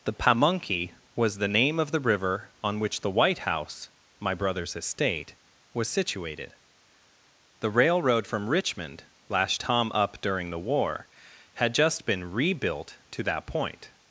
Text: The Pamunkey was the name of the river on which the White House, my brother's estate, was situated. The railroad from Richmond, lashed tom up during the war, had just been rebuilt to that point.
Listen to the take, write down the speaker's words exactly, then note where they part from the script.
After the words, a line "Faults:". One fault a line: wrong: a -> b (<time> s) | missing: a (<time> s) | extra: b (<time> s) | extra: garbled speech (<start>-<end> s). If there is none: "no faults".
The Pamunkey was the name of the river on which the White House, my brother's estate, was situated. The railroad from Richmond, lashed tom up during the war, had just been rebuilt to that point.
Faults:
no faults